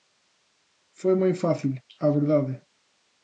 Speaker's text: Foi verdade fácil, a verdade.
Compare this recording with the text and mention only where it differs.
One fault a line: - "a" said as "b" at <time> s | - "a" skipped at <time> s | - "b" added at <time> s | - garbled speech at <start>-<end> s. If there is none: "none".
- "verdade" said as "moi" at 1.2 s